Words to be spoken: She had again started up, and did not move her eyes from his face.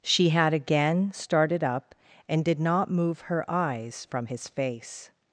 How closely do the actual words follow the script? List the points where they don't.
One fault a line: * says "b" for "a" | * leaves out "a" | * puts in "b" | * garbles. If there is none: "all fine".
all fine